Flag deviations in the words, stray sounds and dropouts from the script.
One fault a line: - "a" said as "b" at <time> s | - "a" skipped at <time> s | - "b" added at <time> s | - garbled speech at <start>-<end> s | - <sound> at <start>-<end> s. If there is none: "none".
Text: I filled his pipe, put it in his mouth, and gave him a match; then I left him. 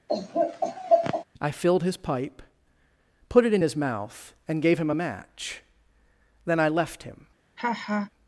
- laugh at 0.1-1.2 s
- laugh at 7.6-8.1 s